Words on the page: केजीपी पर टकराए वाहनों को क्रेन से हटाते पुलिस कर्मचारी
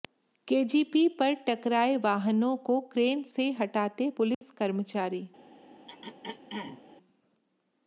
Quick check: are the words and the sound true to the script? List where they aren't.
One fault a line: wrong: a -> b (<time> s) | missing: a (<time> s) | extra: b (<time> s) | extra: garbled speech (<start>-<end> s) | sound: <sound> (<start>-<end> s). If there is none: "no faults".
sound: dropout (4.3-4.4 s)
sound: throat clearing (5.9-6.8 s)